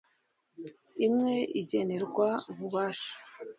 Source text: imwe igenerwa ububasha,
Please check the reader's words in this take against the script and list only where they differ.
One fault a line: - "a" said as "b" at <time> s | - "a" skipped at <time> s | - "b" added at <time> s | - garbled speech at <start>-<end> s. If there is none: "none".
none